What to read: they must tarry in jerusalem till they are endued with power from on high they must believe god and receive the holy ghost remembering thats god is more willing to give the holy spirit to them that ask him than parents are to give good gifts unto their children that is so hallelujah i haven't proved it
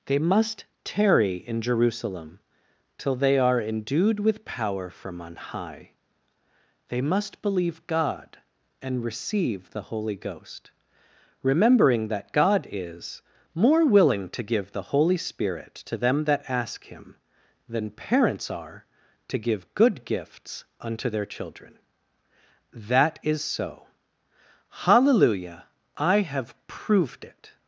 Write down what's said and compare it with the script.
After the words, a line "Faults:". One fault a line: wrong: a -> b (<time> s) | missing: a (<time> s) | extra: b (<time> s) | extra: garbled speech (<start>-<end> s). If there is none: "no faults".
they must tarry in jerusalem till they are endued with power from on high they must believe god and receive the holy ghost remembering that god is more willing to give the holy spirit to them that ask him than parents are to give good gifts unto their children that is so hallelujah i have proved it
Faults:
wrong: thats -> that (12.1 s)
wrong: haven't -> have (26.2 s)